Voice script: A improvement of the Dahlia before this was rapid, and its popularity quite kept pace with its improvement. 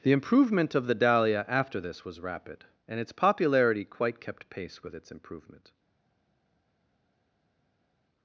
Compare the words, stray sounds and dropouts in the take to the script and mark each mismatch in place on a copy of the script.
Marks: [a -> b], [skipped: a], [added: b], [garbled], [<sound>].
[A -> The] improvement of the Dahlia [before -> after] this was rapid, and its popularity quite kept pace with its improvement.